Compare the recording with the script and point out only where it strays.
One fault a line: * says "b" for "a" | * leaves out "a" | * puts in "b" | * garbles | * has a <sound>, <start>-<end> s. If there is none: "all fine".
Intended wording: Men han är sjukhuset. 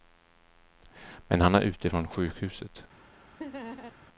* puts in "ute från"
* has a laugh, 3.4-3.9 s